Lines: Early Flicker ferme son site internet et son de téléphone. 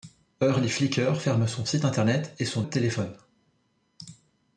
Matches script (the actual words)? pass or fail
pass